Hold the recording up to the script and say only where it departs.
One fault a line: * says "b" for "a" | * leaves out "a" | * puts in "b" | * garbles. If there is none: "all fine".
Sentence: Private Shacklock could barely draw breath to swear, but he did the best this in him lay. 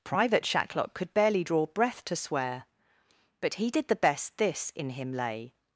all fine